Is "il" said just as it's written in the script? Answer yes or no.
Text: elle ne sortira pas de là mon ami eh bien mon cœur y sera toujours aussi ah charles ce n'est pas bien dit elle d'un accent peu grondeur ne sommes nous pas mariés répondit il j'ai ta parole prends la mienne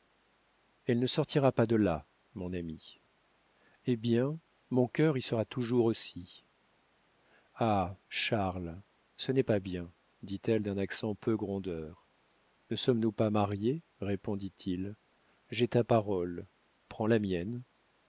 yes